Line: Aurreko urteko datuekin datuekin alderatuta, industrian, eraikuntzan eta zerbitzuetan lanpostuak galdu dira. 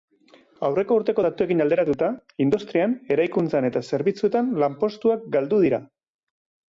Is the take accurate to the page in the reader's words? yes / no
no